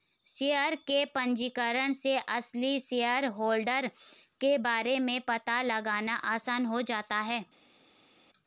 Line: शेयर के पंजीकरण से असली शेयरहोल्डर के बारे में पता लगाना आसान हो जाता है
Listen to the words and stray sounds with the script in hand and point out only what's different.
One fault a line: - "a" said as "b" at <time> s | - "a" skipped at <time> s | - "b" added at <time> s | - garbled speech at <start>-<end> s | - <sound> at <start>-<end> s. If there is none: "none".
none